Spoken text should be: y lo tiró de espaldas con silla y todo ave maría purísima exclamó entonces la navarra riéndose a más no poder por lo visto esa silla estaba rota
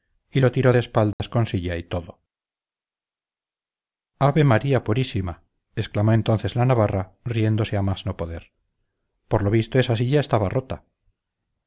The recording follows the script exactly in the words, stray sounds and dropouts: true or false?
false